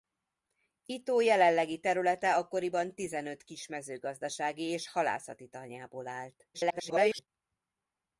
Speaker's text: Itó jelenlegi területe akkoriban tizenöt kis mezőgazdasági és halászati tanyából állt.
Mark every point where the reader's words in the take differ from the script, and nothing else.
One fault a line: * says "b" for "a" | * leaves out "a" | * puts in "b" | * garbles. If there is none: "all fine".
* garbles